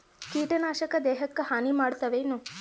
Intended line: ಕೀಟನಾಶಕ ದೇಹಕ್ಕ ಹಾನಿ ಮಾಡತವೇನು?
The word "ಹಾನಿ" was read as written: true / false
true